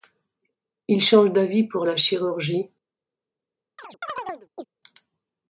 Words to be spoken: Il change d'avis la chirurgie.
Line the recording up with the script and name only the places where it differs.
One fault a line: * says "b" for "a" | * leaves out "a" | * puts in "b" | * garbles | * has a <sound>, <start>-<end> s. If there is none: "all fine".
* puts in "pour"
* has a chirp, 3.8-4.7 s